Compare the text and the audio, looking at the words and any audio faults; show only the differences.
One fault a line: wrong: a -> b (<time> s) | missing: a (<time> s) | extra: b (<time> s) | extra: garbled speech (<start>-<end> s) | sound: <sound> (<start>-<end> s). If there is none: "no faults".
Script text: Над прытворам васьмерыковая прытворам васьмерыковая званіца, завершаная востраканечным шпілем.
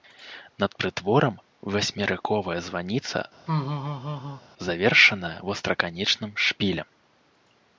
missing: прытворам васьмерыковая (2.6 s)
sound: laugh (3.5-4.4 s)